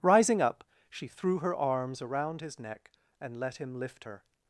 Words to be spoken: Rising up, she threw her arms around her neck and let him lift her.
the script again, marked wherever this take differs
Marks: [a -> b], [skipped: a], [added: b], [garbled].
Rising up, she threw her arms around [her -> his] neck and let him lift her.